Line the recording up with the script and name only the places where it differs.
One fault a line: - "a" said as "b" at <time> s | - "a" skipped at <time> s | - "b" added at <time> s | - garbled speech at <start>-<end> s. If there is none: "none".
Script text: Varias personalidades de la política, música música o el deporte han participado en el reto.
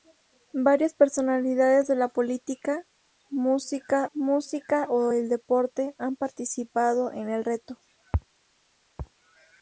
none